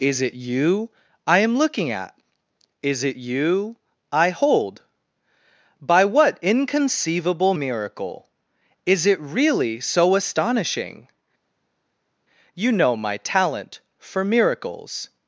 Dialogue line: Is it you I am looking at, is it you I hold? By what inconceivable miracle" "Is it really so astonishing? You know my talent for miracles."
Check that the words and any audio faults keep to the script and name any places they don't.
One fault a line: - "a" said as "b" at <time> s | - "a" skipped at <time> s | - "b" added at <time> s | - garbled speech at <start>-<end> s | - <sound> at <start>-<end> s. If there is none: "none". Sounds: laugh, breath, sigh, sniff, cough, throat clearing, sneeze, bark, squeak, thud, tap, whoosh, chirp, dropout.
none